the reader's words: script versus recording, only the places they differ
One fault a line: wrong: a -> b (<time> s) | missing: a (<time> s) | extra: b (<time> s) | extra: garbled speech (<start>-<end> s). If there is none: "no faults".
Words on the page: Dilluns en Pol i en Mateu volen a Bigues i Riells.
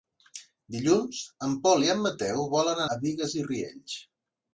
no faults